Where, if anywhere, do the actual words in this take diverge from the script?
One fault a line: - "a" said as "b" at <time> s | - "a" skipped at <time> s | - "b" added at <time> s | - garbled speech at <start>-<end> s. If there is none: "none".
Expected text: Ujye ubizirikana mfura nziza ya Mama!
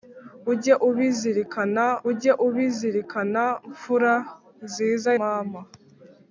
- "ujye ubizirikana" added at 2.1 s
- "ya" skipped at 5.1 s